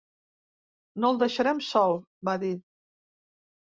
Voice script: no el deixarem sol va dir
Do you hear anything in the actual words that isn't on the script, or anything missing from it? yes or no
no